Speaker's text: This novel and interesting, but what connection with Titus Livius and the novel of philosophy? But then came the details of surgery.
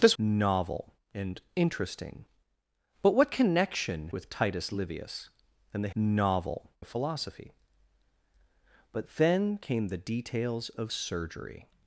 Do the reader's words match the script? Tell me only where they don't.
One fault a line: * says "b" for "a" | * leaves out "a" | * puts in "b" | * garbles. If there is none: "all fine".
all fine